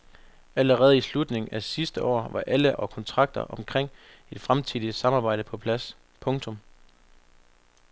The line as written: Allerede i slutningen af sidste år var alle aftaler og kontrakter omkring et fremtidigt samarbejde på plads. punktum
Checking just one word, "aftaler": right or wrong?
wrong